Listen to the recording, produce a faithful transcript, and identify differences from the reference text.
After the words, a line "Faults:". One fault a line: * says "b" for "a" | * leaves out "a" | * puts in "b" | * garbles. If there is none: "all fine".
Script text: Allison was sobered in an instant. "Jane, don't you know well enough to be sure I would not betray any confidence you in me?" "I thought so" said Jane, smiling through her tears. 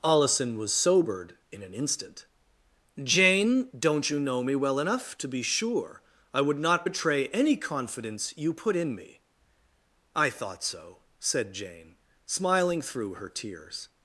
Allison was sobered in an instant. "Jane, don't you know me well enough to be sure I would not betray any confidence you put in me?" "I thought so" said Jane, smiling through her tears.
Faults:
* puts in "me"
* puts in "put"